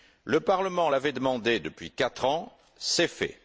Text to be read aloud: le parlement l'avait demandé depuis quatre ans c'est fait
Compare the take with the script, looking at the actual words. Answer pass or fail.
pass